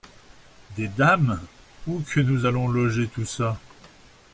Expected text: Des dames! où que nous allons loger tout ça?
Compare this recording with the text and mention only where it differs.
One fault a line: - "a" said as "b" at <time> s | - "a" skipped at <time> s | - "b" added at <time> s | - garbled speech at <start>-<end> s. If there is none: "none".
none